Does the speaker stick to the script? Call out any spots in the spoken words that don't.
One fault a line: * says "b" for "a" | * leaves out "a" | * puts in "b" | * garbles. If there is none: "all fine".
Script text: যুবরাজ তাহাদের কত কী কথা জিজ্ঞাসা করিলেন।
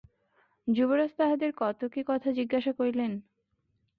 all fine